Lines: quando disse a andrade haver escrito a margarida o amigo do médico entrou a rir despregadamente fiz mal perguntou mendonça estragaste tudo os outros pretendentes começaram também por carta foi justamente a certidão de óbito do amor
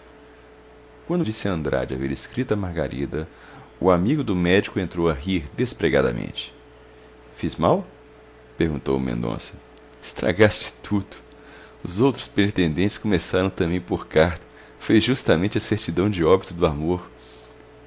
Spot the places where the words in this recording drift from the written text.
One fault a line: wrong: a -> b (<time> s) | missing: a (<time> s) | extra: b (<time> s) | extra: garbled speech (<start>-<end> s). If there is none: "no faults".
no faults